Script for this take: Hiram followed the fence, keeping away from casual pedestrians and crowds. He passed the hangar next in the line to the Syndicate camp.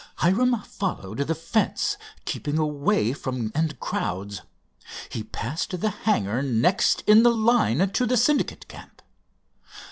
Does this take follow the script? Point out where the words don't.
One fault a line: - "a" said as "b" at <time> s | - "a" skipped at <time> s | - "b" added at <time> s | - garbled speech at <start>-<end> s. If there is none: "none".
- "casual pedestrians" skipped at 3.5 s